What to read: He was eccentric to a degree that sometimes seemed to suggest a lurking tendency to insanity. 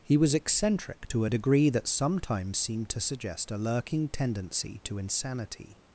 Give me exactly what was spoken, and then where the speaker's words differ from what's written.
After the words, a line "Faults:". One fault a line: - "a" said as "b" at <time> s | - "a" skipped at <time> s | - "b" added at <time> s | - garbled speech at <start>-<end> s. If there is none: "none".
He was eccentric to a degree that sometimes seemed to suggest a lurking tendency to insanity.
Faults:
none